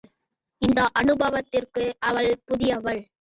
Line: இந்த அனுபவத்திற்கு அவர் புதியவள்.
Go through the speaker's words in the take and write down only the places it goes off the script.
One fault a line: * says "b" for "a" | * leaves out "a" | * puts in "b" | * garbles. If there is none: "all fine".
* says "அவள்" for "அவர்"